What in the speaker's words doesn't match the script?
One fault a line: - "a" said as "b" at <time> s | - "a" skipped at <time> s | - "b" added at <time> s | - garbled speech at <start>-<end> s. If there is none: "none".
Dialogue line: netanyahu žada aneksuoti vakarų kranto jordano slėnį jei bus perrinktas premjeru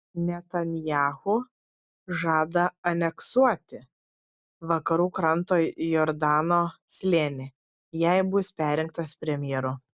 none